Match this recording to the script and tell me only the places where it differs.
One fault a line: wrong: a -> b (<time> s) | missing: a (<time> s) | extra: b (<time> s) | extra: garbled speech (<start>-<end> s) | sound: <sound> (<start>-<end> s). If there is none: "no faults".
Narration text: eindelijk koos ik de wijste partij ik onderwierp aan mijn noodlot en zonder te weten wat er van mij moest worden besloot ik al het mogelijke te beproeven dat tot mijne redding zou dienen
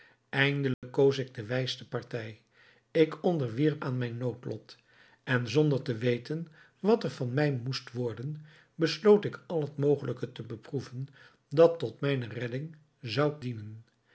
sound: dropout (0.7-0.8 s)